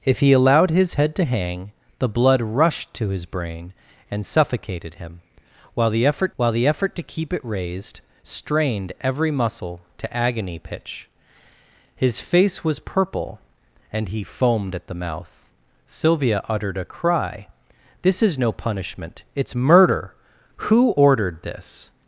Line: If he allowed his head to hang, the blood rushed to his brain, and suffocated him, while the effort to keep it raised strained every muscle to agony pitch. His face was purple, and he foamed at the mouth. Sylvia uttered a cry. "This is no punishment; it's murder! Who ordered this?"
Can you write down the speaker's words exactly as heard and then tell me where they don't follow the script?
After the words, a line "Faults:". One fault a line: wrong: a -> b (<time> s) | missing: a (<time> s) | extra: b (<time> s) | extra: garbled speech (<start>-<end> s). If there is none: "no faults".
If he allowed his head to hang, the blood rushed to his brain, and suffocated him, while the effort while the effort to keep it raised strained every muscle to agony pitch. His face was purple, and he foamed at the mouth. Sylvia uttered a cry. "This is no punishment; it's murder! Who ordered this?"
Faults:
extra: while the effort (6.4 s)